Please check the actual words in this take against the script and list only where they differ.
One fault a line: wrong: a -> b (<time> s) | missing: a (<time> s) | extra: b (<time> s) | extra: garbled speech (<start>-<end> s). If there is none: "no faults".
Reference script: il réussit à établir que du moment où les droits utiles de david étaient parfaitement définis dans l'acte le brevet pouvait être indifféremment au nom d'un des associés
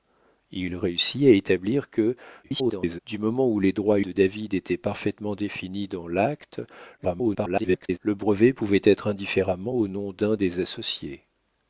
extra: garbled speech (2.4-3.0 s)
missing: utiles (4.0 s)
extra: garbled speech (7.0-8.0 s)